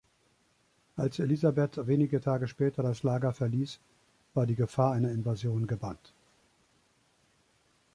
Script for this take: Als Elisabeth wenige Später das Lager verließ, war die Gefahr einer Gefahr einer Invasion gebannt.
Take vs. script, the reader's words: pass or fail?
fail